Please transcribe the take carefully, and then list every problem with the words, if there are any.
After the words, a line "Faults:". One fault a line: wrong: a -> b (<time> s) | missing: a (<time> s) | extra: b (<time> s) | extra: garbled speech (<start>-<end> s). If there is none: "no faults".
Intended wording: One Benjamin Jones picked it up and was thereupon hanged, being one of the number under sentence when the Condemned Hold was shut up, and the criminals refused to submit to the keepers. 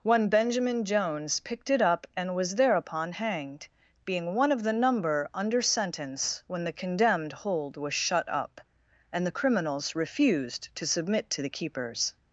One Benjamin Jones picked it up and was thereupon hanged, being one of the number under sentence when the Condemned Hold was shut up, and the criminals refused to submit to the keepers.
Faults:
no faults